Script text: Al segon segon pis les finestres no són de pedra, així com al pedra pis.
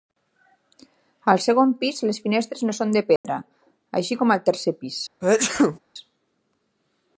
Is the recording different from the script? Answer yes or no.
yes